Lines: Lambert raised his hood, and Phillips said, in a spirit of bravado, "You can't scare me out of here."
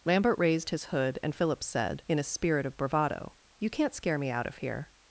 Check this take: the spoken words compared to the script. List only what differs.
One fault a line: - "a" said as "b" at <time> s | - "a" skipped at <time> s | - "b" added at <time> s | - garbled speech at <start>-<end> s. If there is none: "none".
none